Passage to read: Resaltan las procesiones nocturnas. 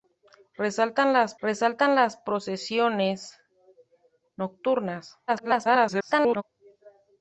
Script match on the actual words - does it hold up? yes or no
no